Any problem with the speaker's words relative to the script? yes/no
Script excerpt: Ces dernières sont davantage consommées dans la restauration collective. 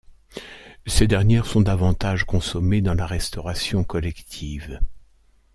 no